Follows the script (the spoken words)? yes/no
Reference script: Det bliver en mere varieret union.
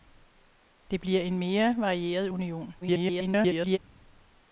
no